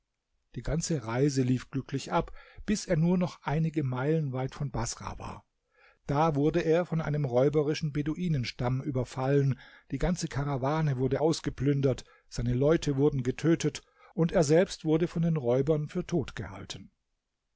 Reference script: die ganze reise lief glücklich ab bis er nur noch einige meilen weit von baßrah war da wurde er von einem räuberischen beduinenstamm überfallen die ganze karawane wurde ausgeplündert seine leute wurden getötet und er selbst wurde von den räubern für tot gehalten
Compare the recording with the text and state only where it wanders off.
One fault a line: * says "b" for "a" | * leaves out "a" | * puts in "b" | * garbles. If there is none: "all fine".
all fine